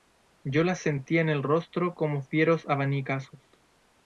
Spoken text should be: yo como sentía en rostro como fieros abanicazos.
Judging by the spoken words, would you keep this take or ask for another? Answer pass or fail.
fail